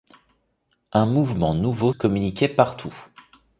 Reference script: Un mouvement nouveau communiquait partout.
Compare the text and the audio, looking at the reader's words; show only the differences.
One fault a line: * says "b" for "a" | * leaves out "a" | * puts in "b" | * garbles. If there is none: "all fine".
all fine